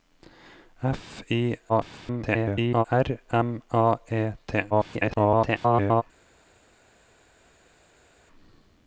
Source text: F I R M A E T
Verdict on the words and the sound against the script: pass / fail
fail